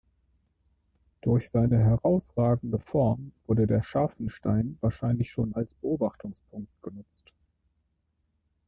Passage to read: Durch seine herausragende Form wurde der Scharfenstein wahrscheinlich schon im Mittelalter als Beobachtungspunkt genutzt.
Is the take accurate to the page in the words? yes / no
no